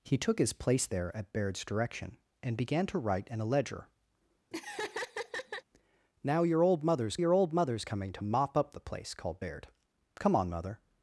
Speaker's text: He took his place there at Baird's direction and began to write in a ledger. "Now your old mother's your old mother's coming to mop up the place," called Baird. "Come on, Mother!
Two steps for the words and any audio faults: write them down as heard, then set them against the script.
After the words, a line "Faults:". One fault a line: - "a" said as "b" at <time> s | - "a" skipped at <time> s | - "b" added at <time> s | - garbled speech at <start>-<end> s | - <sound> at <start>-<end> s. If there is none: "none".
He took his place there at Baird's direction and began to write in a ledger. "Now your old mother's your old mother's coming to mop up the place," called Baird. "Come on, Mother!
Faults:
- laugh at 4.5-5.6 s